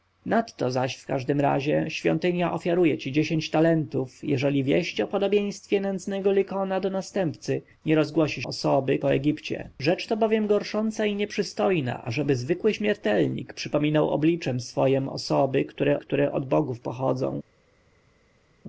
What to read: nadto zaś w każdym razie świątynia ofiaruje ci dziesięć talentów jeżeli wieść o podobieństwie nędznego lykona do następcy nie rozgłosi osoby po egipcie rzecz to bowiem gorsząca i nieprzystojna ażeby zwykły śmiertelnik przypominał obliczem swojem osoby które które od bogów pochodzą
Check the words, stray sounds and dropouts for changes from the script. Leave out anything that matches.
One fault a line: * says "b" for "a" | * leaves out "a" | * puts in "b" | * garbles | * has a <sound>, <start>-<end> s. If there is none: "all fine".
all fine